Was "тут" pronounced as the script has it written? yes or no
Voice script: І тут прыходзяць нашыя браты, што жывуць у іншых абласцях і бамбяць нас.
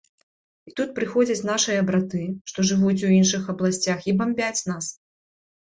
yes